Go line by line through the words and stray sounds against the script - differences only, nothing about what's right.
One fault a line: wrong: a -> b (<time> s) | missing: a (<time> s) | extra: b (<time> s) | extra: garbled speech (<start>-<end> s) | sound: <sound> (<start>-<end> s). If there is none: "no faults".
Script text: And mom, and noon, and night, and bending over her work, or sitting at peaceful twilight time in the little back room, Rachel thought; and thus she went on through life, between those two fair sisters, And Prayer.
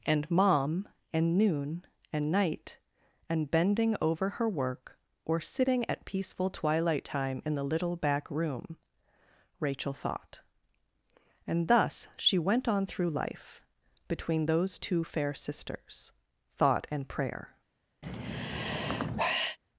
extra: Thought (16.5 s)
sound: sigh (18.0-19.6 s)